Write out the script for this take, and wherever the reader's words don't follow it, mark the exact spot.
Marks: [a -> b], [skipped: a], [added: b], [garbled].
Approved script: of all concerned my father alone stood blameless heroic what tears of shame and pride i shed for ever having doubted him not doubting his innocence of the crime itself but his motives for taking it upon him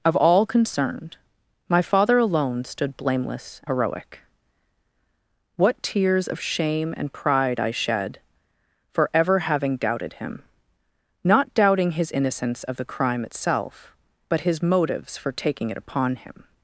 of all concerned my father alone stood blameless heroic what tears of shame and pride i shed for ever having doubted him not doubting his innocence of the crime itself but his motives for taking it upon him